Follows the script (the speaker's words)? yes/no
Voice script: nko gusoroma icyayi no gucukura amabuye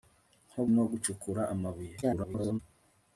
no